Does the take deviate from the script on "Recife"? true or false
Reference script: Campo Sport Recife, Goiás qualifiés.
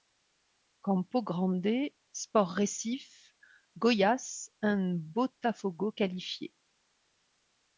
false